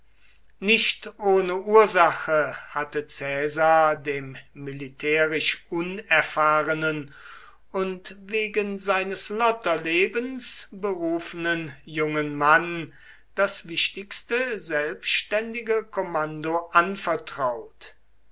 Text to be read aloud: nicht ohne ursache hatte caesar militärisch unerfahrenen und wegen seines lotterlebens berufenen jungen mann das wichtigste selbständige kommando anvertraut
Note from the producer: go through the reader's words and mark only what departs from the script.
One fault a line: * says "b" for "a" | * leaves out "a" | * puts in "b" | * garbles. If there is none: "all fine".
* puts in "dem"